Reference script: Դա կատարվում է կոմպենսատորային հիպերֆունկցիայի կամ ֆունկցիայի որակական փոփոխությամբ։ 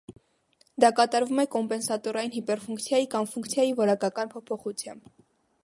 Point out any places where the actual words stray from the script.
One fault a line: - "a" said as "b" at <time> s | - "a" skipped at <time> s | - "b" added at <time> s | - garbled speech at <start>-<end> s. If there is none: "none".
none